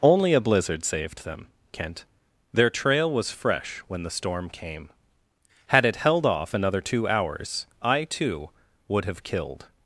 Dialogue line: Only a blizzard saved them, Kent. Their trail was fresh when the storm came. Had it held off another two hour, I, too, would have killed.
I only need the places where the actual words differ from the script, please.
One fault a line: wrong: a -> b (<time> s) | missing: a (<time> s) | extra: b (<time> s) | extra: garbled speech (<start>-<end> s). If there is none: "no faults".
wrong: hour -> hours (7.1 s)